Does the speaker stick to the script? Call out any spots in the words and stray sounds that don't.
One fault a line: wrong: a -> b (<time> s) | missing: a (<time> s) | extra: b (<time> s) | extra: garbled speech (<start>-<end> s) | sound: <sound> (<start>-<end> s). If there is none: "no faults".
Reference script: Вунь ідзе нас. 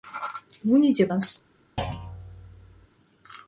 sound: thud (1.8-2.9 s)